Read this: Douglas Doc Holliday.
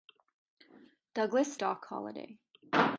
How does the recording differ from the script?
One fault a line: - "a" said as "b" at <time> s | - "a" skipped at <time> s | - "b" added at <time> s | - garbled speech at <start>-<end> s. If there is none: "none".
none